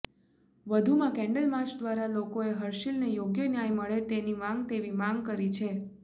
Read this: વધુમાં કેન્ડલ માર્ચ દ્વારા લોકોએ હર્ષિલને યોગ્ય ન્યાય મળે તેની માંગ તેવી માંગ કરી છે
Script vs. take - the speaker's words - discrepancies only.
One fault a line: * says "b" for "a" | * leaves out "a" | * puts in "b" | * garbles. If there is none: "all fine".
all fine